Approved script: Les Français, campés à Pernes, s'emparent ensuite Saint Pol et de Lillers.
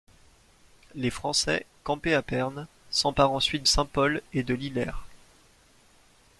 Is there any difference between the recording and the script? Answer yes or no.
no